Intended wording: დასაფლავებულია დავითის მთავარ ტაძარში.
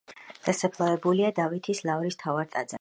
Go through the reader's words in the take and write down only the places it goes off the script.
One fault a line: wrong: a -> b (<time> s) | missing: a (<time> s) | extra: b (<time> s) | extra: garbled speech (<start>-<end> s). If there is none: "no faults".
extra: ლავრის (1.9 s)